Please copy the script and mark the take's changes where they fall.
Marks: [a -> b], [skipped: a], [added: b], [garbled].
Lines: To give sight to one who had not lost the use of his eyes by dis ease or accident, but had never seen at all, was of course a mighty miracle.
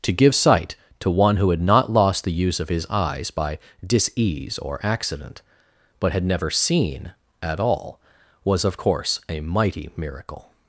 To give sight to one who had not lost the use of his eyes by dis ease or accident, but had never seen at all, was of course a mighty miracle.